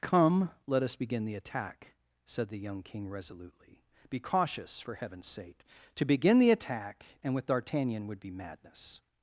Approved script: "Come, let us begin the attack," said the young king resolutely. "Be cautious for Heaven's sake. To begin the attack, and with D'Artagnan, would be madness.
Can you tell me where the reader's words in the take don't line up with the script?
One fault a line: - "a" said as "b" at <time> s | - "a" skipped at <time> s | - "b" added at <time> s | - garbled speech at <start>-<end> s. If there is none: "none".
none